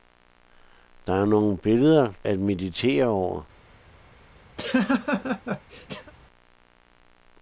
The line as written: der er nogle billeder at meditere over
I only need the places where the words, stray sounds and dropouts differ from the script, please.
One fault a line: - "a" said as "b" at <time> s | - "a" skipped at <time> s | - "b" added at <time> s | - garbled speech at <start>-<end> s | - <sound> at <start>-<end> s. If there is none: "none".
- laugh at 4.6-6.1 s